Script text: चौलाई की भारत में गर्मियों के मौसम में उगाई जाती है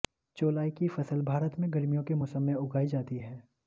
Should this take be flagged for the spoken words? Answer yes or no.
yes